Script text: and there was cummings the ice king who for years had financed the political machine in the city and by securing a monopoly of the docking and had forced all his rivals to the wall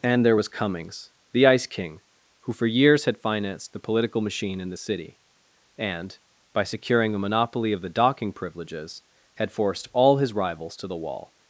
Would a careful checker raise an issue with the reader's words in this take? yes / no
yes